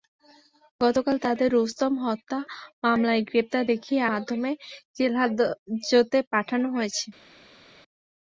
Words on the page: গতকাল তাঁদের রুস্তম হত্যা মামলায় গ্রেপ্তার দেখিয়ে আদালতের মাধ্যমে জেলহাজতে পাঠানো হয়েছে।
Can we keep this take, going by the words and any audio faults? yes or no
no